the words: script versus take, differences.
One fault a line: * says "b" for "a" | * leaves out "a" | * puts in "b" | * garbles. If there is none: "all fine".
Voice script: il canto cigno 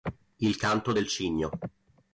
* puts in "del"